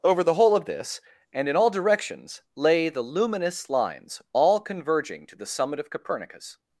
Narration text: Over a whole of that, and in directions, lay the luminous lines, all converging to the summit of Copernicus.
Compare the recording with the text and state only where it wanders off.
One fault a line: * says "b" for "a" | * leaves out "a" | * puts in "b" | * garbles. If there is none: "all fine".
* says "the" for "a"
* says "this" for "that"
* puts in "all"